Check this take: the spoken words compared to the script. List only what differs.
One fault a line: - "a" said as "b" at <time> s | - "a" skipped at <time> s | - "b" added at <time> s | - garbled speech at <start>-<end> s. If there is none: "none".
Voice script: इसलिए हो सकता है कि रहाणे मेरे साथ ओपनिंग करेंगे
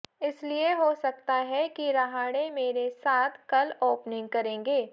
- "कल" added at 3.5 s